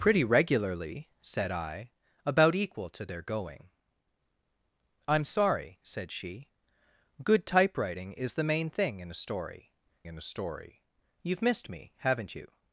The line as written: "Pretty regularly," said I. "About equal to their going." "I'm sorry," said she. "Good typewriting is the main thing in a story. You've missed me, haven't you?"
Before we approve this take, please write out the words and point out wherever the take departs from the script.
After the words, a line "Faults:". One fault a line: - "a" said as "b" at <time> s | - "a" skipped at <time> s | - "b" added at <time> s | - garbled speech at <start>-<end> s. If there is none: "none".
"Pretty regularly," said I. "About equal to their going." "I'm sorry," said she. "Good typewriting is the main thing in a story in a story. You've missed me, haven't you?"
Faults:
- "in a story" added at 10.1 s